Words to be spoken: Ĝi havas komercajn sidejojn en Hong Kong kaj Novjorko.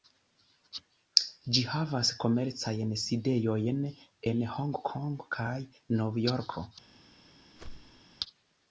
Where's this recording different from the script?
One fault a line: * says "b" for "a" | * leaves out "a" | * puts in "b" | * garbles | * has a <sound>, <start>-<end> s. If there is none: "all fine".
* has a whoosh, 7.5-8.0 s